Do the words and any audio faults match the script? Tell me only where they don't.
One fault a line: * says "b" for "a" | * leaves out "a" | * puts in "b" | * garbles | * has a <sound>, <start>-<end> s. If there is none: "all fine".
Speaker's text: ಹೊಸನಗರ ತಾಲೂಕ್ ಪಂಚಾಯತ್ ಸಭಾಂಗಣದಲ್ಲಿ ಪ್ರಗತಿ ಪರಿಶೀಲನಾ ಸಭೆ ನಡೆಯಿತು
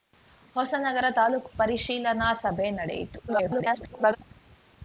* leaves out "ಪಂಚಾಯತ್ ಸಭಾಂಗಣದಲ್ಲಿ ಪ್ರಗತಿ"
* garbles